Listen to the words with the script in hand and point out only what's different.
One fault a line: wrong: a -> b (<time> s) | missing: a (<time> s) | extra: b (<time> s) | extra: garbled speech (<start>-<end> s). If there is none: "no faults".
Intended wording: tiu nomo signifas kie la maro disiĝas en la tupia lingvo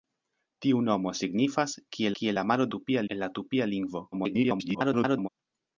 extra: kie (2.2 s)
wrong: disiĝas -> tupia (2.7 s)
extra: garbled speech (4.1-5.3 s)